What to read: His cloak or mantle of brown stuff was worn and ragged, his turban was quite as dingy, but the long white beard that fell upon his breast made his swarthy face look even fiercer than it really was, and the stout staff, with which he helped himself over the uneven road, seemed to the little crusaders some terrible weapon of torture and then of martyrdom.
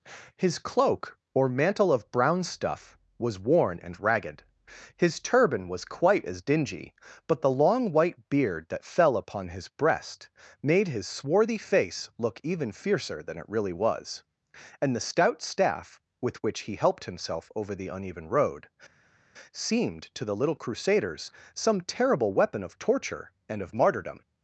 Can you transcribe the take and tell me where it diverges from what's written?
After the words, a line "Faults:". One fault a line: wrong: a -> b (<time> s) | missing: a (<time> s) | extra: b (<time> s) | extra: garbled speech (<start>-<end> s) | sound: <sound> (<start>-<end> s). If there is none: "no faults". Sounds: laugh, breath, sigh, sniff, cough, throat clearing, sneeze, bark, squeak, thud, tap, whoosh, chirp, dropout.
His cloak or mantle of brown stuff was worn and ragged, his turban was quite as dingy, but the long white beard that fell upon his breast made his swarthy face look even fiercer than it really was, and the stout staff, with which he helped himself over the uneven road, seemed to the little crusaders some terrible weapon of torture and of martyrdom.
Faults:
missing: then (23.6 s)